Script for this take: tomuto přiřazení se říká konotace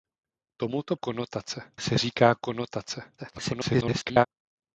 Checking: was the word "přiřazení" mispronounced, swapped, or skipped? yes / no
yes